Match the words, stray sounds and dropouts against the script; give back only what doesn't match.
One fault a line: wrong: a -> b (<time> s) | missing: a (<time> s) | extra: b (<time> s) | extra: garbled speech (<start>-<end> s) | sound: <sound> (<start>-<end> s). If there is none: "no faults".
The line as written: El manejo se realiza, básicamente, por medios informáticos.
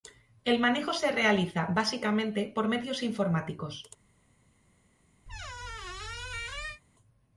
sound: squeak (5.3-6.8 s)